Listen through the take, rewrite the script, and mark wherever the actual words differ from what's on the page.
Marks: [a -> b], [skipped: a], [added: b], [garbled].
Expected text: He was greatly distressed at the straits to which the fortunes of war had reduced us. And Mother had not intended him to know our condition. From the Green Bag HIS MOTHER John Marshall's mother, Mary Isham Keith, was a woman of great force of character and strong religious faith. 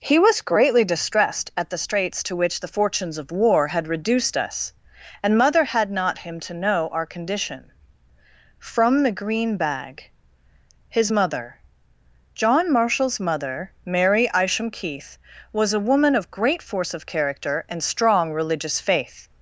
He was greatly distressed at the straits to which the fortunes of war had reduced us. And Mother had not [skipped: intended] him to know our condition. From the Green Bag HIS MOTHER John Marshall's mother, Mary Isham Keith, was a woman of great force of character and strong religious faith.